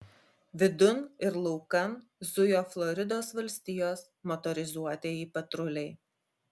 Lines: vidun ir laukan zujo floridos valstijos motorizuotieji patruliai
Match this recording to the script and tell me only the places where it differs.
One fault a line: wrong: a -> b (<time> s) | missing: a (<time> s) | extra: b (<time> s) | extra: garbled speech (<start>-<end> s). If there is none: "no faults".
no faults